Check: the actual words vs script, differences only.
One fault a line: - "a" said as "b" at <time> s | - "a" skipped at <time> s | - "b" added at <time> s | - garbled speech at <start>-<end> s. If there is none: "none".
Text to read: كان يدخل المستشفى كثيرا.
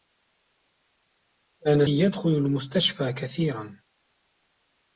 none